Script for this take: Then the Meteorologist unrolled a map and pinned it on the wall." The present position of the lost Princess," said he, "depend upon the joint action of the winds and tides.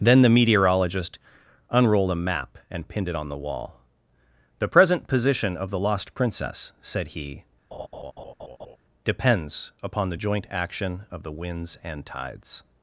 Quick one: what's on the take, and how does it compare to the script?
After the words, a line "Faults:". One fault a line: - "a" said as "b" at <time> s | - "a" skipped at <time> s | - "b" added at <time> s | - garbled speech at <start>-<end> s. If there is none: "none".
Then the Meteorologist unrolled a map and pinned it on the wall." The present position of the lost Princess," said he, "depends upon the joint action of the winds and tides.
Faults:
- "depend" said as "depends" at 9.0 s